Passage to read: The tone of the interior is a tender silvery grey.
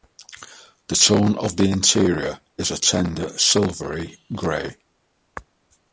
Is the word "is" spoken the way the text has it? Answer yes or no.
yes